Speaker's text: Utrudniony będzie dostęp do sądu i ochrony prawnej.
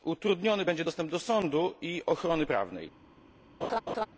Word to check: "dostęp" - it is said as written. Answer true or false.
true